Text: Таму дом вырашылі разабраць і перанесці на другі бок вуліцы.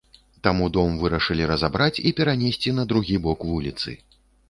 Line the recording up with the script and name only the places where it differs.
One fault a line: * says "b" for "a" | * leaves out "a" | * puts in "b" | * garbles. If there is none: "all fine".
all fine